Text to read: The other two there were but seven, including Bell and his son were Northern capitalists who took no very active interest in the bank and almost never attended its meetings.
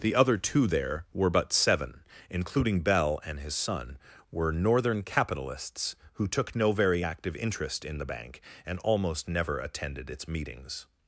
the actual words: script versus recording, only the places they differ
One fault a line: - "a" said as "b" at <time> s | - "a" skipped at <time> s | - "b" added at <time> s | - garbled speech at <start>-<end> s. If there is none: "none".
none